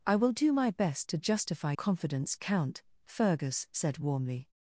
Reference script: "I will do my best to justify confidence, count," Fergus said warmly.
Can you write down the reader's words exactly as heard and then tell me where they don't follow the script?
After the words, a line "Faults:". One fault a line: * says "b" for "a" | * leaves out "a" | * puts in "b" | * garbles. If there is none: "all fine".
"I will do my best to justify confidence, count," Fergus said warmly.
Faults:
all fine